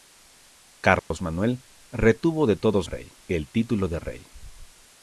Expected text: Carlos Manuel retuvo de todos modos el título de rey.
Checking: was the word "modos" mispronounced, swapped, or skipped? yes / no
yes